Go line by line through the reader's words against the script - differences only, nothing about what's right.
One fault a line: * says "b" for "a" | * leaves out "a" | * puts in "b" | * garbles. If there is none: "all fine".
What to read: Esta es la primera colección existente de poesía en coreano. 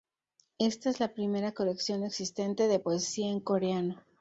all fine